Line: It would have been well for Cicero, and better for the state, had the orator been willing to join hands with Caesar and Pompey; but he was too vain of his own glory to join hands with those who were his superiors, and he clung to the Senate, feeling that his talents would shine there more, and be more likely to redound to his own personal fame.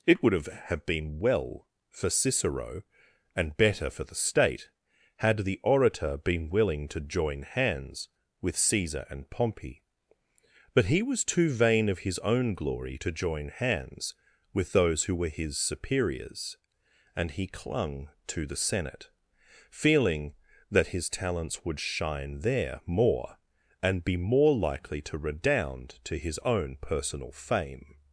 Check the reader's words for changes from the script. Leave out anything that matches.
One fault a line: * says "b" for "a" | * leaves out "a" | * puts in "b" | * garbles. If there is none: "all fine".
* puts in "have"